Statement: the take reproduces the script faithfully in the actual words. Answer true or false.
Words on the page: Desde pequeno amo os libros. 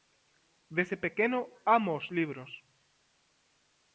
true